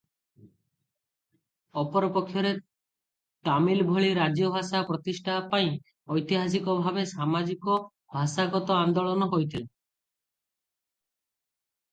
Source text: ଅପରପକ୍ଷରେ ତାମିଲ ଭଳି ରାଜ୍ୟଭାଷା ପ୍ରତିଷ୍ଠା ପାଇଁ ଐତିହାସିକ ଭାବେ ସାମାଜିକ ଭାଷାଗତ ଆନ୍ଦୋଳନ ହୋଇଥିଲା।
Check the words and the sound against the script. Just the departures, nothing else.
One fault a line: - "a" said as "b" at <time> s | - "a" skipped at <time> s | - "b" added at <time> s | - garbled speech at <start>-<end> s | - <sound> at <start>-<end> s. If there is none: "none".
none